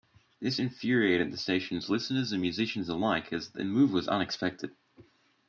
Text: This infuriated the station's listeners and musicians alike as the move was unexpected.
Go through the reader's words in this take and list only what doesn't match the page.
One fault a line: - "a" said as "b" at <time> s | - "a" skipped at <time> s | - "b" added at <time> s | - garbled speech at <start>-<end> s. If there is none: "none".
none